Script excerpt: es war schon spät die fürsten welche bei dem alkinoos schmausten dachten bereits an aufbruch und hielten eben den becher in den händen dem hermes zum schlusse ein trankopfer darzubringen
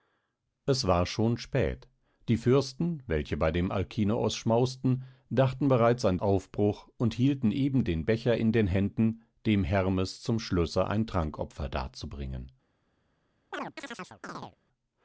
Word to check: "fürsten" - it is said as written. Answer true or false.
true